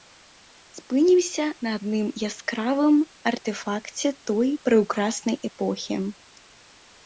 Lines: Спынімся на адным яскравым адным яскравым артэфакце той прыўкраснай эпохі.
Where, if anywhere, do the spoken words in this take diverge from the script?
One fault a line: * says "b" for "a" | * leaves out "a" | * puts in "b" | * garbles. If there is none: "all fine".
* leaves out "адным яскравым"